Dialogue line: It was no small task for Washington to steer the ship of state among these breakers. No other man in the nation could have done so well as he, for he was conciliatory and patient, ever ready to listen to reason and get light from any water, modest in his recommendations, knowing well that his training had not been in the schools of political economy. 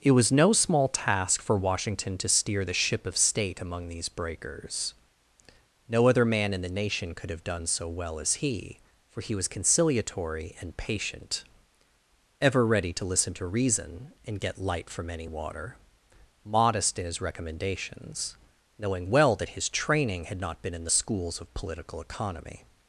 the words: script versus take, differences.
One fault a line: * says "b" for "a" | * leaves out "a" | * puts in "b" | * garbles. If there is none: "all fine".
all fine